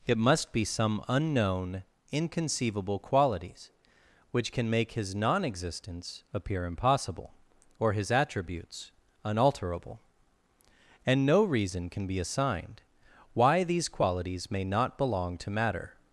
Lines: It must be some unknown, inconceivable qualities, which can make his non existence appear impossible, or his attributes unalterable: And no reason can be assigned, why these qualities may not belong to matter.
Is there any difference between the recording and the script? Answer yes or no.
no